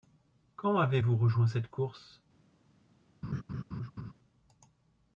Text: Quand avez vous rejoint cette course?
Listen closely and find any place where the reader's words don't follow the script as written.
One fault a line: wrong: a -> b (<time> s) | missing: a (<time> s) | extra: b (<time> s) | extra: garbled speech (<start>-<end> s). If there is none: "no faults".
no faults